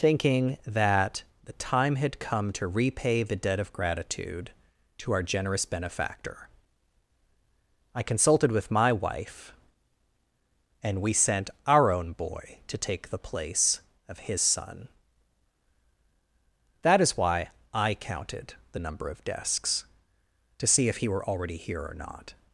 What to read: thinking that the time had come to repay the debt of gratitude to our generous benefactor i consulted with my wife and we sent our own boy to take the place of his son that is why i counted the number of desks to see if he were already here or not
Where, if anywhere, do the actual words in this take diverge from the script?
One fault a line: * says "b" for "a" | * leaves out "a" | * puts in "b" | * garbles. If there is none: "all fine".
all fine